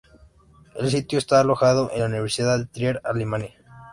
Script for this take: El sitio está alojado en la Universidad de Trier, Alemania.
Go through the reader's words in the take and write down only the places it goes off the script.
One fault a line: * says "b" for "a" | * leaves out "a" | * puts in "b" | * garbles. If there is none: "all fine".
all fine